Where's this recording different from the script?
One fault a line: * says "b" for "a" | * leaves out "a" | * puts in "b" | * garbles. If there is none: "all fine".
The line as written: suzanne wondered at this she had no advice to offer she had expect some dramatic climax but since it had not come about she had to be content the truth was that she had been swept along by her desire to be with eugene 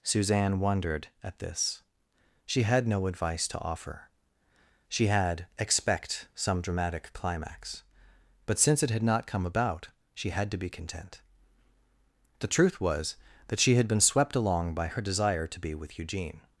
all fine